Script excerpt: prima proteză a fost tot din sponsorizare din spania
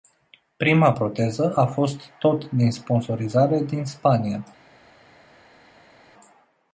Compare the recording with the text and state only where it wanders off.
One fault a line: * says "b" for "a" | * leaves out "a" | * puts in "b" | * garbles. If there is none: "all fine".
all fine